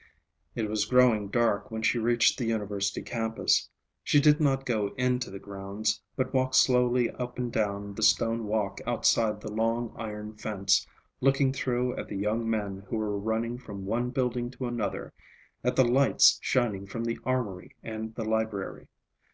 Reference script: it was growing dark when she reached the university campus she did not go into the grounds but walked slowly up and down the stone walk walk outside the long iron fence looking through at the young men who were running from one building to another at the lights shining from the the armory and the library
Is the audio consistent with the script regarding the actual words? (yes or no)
no